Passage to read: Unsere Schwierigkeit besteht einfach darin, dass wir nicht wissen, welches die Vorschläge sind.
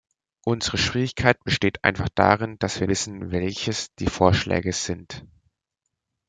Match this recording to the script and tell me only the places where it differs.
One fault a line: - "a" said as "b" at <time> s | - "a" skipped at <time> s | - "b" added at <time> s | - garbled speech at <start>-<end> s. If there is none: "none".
- "nicht" skipped at 2.9 s